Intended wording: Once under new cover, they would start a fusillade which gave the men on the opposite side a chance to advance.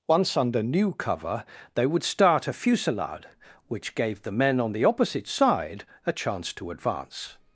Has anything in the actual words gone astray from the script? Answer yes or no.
no